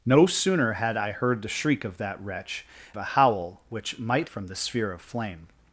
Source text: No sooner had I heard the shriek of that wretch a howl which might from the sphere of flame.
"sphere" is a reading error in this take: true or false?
false